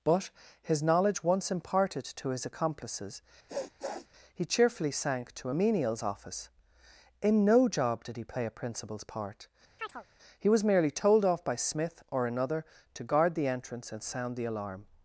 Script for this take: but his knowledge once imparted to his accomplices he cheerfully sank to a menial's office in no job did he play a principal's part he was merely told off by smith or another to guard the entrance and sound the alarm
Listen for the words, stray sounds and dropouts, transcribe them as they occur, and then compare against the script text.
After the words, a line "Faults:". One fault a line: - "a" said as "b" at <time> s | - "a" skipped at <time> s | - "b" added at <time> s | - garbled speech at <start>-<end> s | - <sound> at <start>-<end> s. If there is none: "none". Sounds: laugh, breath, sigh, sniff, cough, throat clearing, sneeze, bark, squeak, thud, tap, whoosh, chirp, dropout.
but his knowledge once imparted to his accomplices he cheerfully sank to a menial's office in no job did he play a principal's part he was merely told off by smith or another to guard the entrance and sound the alarm
Faults:
- sniff at 3.5-4.1 s
- chirp at 9.8-10.0 s